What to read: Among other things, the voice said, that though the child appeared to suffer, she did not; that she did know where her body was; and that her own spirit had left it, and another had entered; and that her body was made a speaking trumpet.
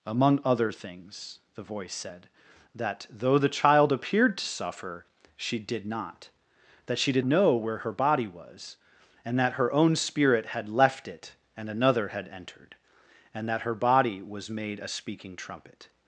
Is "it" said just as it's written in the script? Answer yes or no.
yes